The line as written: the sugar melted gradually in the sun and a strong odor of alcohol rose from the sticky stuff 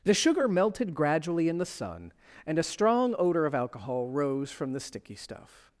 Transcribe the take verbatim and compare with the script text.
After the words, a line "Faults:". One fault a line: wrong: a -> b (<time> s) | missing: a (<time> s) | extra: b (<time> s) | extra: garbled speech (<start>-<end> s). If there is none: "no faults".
the sugar melted gradually in the sun and a strong odor of alcohol rose from the sticky stuff
Faults:
no faults